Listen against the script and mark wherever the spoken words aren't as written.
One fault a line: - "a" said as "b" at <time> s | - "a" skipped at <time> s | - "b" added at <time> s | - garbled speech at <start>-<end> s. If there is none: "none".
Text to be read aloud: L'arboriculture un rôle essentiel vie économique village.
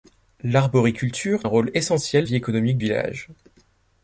none